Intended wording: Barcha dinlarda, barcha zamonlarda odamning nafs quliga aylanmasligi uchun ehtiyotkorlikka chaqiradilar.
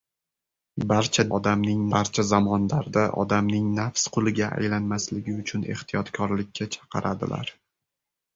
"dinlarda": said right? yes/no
no